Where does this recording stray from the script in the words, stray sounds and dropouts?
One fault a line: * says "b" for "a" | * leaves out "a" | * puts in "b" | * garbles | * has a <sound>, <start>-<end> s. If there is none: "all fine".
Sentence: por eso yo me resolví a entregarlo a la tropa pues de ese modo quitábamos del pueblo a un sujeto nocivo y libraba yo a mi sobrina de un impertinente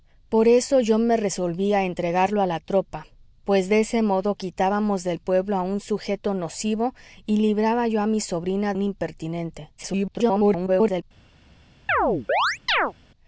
* leaves out "de"
* garbles
* has a chirp, 11.9-12.9 s